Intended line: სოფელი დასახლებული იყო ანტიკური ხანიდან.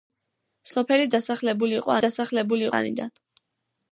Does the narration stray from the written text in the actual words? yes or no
yes